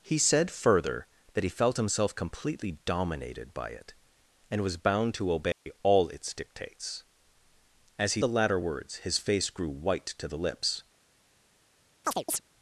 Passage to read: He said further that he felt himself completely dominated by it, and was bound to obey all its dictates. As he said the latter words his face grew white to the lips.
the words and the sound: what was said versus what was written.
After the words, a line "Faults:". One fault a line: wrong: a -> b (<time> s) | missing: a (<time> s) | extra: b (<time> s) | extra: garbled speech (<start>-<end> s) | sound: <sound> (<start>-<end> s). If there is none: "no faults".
He said further that he felt himself completely dominated by it, and was bound to obey all its dictates. As he the latter words his face grew white to the lips.
Faults:
sound: dropout (5.5-5.7 s)
missing: said (8.2 s)
sound: chirp (12.0-12.4 s)